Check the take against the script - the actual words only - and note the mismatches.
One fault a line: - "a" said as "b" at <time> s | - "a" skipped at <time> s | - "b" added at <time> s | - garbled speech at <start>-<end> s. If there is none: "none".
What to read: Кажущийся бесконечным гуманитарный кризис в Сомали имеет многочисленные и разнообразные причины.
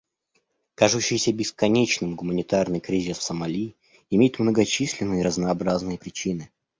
none